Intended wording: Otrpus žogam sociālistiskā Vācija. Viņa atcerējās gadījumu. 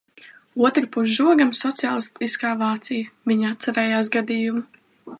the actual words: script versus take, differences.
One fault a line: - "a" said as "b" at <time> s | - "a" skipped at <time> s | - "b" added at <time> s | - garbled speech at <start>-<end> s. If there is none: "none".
none